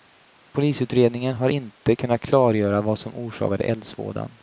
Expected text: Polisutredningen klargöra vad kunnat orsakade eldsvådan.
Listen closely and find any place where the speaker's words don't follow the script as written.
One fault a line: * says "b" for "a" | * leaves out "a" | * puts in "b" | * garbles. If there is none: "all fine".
* puts in "har inte kunnat"
* says "som" for "kunnat"